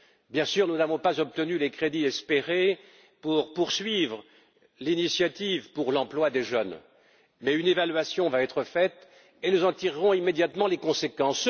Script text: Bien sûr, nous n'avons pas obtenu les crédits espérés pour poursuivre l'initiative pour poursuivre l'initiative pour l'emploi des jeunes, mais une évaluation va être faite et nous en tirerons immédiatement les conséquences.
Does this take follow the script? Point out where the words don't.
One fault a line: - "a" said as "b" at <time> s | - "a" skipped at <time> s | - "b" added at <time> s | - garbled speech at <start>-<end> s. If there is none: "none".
- "poursuivre l'initiative pour" skipped at 5.9 s